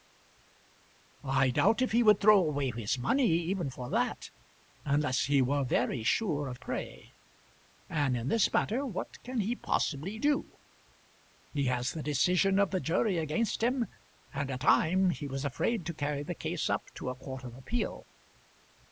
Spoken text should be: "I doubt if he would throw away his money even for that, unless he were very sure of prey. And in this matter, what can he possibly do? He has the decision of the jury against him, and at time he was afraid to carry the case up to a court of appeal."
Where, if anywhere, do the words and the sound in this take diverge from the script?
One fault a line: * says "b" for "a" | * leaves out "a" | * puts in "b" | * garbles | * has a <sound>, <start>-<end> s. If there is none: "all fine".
all fine